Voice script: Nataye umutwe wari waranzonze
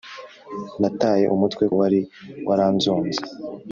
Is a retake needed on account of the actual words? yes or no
no